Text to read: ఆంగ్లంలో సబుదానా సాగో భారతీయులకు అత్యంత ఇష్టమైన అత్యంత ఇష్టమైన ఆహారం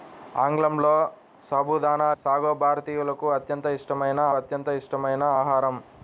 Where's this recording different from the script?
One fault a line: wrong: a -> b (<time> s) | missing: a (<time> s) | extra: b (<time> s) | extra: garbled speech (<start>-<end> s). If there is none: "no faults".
no faults